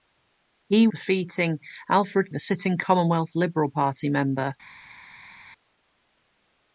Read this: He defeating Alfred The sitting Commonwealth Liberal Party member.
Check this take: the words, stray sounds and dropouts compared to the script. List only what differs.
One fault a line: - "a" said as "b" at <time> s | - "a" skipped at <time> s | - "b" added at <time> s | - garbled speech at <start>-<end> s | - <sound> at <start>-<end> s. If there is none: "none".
none